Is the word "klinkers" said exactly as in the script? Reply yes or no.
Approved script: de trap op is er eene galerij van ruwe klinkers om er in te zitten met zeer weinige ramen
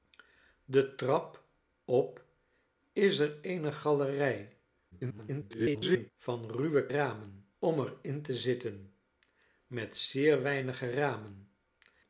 no